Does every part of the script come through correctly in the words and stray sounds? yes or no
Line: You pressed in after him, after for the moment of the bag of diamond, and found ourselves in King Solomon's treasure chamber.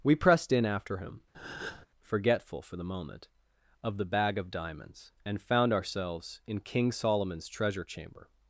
no